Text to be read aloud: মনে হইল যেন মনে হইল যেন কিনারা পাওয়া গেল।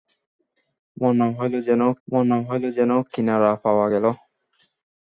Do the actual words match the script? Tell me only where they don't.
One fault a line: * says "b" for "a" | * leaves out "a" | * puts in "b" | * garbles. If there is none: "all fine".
all fine